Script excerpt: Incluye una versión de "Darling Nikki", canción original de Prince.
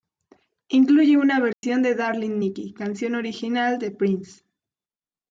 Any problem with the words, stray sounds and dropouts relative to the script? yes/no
yes